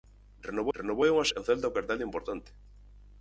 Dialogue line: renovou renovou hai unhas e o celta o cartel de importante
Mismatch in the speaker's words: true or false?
false